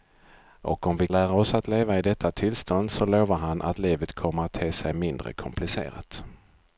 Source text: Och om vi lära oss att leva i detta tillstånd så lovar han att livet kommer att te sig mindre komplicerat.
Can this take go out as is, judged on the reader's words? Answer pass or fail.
pass